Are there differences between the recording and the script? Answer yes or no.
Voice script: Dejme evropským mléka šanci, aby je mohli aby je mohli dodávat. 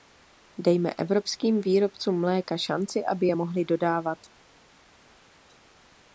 yes